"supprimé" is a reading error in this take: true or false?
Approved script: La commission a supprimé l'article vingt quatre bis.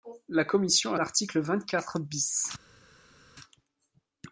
true